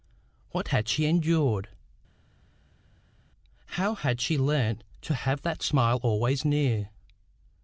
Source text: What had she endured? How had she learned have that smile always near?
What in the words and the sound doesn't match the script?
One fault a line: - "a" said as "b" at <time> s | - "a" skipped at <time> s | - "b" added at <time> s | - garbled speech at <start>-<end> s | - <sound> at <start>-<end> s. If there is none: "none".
- "to" added at 5.0 s